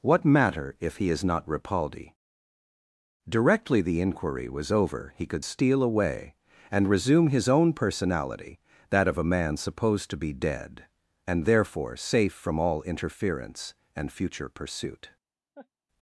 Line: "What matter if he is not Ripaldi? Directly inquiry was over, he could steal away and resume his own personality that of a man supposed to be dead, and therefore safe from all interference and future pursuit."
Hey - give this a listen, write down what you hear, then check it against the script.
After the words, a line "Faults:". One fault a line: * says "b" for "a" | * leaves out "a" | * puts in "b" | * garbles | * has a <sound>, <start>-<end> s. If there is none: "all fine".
"What matter if he is not Ripaldi? Directly the inquiry was over, he could steal away and resume his own personality that of a man supposed to be dead, and therefore safe from all interference and future pursuit."
Faults:
* puts in "the"
* has a laugh, 15.6-15.7 s